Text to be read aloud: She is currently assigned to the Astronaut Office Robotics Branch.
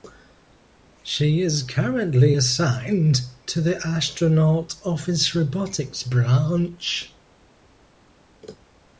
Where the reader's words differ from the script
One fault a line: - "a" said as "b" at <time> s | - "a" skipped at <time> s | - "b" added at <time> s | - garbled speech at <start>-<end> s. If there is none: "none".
none